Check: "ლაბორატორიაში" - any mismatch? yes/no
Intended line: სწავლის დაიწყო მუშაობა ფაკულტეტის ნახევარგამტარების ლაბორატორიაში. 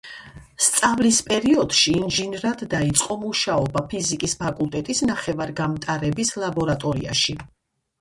no